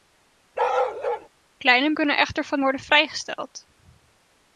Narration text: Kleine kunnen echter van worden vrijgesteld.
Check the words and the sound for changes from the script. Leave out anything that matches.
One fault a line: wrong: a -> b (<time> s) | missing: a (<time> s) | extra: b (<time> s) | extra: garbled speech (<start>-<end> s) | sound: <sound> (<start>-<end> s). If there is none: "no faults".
sound: bark (0.6-1.3 s)